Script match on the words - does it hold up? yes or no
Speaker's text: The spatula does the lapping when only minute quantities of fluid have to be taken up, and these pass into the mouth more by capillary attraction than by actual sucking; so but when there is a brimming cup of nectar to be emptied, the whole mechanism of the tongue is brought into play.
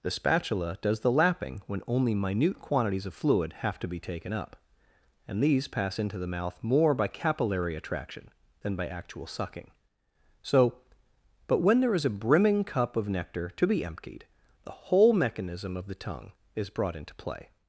yes